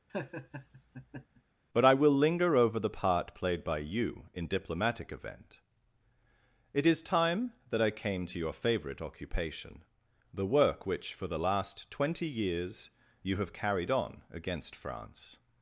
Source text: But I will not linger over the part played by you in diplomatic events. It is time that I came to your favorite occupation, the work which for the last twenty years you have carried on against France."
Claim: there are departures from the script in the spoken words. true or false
true